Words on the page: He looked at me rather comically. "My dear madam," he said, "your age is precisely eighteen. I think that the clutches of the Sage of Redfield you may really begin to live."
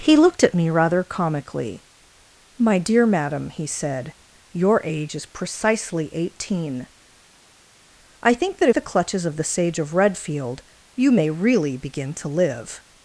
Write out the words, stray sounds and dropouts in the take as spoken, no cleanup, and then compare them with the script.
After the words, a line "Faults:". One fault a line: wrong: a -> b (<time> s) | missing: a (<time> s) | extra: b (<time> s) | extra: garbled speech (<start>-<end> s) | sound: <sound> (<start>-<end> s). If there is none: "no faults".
He looked at me rather comically. "My dear madam," he said, "your age is precisely eighteen. I think that the clutches of the Sage of Redfield you may really begin to live."
Faults:
no faults